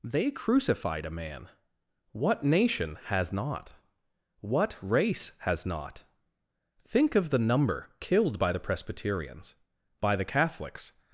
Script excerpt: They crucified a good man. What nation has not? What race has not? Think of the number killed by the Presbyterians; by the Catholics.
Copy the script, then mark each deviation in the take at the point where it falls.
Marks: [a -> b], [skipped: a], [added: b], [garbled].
They crucified a [skipped: good] man. What nation has not? What race has not? Think of the number killed by the Presbyterians; by the Catholics.